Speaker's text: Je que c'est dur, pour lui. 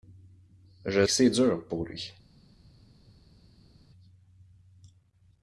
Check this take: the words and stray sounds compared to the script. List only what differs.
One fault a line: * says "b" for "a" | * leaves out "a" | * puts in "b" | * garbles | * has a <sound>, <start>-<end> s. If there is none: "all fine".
all fine